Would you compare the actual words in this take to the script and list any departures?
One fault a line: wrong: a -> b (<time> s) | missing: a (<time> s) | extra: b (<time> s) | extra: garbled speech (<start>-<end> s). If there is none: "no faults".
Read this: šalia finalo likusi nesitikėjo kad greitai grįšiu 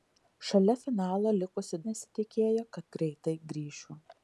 no faults